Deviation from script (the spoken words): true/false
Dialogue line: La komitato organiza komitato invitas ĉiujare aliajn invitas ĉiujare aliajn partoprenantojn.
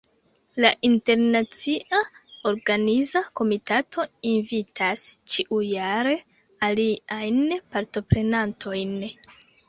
true